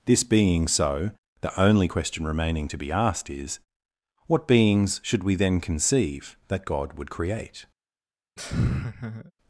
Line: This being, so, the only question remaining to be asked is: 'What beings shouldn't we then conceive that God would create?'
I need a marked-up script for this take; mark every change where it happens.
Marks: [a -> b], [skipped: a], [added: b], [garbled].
This being, so, the only question remaining to be asked is: 'What beings [shouldn't -> should] we then conceive that God would create?'